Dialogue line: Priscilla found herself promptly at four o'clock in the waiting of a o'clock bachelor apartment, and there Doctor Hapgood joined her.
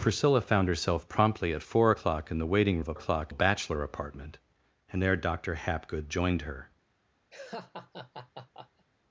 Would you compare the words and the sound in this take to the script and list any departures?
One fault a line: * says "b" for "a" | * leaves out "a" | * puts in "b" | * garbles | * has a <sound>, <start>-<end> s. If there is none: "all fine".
* has a laugh, 7.3-8.9 s